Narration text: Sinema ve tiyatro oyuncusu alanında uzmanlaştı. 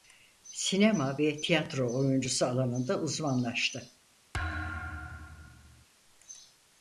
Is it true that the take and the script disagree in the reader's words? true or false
false